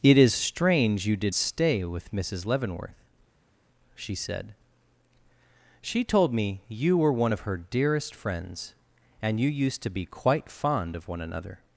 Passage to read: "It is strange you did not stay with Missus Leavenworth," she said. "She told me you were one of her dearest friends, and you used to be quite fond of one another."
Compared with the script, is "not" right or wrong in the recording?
wrong